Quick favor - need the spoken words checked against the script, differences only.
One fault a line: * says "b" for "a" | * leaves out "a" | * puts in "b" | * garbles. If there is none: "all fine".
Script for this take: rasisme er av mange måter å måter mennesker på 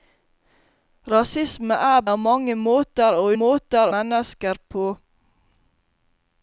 all fine